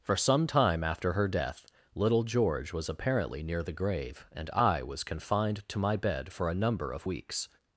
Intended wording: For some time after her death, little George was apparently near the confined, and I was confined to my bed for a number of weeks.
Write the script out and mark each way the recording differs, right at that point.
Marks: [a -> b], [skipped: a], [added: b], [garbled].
For some time after her death, little George was apparently near the [confined, -> grave] and I was confined to my bed for a number of weeks.